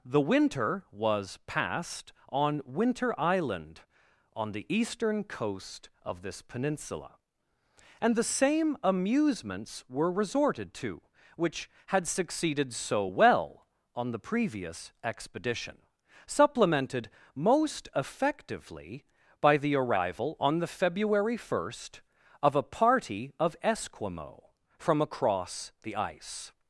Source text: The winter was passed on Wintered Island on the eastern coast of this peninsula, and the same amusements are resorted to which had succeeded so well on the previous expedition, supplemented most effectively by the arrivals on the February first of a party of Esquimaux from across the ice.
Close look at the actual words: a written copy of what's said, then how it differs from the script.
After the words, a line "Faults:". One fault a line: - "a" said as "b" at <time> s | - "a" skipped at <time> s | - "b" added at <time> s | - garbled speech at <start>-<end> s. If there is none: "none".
The winter was passed on Winter Island on the eastern coast of this peninsula, and the same amusements were resorted to which had succeeded so well on the previous expedition, supplemented most effectively by the arrival on the February first of a party of Esquimaux from across the ice.
Faults:
- "Wintered" said as "Winter" at 2.6 s
- "are" said as "were" at 9.9 s
- "arrivals" said as "arrival" at 19.7 s